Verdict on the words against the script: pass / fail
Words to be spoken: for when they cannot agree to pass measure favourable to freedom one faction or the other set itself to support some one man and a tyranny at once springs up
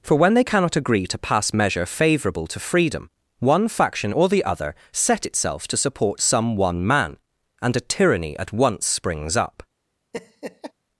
pass